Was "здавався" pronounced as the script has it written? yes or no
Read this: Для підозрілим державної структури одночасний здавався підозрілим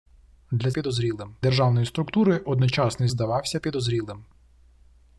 yes